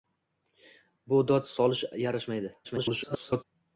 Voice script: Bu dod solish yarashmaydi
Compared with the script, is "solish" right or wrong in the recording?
right